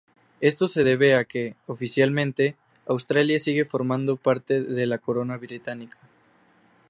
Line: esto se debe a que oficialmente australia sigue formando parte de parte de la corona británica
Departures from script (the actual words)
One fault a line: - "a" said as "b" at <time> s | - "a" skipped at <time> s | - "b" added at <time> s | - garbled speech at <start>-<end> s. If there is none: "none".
- "parte de" skipped at 4.9 s